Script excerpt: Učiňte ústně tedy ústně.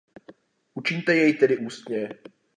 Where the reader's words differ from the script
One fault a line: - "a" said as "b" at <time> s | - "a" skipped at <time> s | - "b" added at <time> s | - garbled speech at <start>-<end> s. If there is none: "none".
- "ústně" said as "jej" at 1.1 s